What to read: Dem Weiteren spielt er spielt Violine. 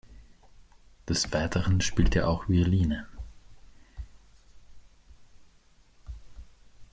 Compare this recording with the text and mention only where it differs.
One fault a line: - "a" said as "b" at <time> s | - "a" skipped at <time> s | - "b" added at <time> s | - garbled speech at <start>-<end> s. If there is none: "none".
- "Dem" said as "Des" at 1.1 s
- "spielt" said as "auch" at 2.2 s